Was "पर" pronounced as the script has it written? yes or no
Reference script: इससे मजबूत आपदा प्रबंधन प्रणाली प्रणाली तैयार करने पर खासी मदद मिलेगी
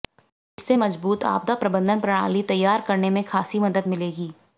no